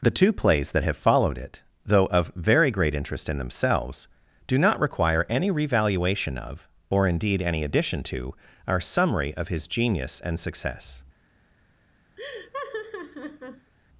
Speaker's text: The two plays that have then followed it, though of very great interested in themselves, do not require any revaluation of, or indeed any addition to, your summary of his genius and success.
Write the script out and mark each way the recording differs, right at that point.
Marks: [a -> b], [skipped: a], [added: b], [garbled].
The two plays that have [skipped: then] followed it, though of very great [interested -> interest] in themselves, do not require any revaluation of, or indeed any addition to, [your -> our] summary of his genius and success.